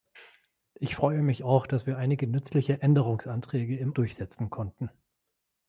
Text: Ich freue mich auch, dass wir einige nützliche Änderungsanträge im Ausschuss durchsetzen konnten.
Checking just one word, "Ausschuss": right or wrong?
wrong